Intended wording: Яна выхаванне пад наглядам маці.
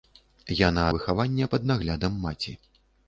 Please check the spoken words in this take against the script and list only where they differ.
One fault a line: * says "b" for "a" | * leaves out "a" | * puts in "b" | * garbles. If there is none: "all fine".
all fine